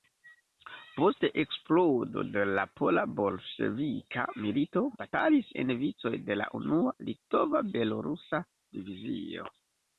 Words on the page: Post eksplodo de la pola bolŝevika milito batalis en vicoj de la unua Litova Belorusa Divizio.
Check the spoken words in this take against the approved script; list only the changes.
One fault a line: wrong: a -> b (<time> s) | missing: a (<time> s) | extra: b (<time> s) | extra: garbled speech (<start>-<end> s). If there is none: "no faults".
no faults